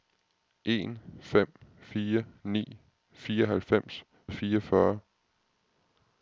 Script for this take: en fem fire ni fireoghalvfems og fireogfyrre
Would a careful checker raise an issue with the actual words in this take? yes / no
no